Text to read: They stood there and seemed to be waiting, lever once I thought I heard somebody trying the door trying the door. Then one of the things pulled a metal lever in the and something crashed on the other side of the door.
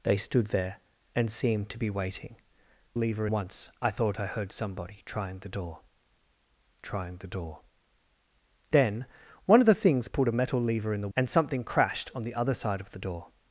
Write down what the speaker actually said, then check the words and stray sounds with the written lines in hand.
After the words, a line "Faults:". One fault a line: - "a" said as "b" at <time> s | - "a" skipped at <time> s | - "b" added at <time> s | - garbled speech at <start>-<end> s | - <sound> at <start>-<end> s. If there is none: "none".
They stood there and seemed to be waiting, lever once I thought I heard somebody trying the door trying the door. Then one of the things pulled a metal lever in the and something crashed on the other side of the door.
Faults:
none